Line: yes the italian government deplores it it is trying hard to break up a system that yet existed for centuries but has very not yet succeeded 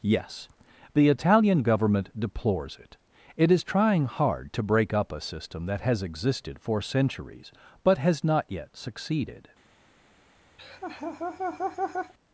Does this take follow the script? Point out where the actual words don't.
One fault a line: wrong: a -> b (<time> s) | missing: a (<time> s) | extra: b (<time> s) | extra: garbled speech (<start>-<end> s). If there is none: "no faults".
wrong: yet -> has (5.8 s)
missing: very (8.2 s)